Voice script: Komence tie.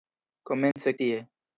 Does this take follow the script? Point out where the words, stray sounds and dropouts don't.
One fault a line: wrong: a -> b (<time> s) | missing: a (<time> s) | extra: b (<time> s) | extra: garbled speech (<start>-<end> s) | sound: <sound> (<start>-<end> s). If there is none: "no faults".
sound: dropout (0.7-0.8 s)